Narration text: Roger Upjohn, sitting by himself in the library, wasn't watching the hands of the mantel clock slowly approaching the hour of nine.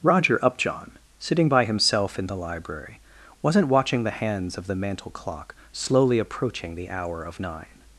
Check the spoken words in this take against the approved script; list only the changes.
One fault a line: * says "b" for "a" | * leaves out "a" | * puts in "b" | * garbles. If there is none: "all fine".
all fine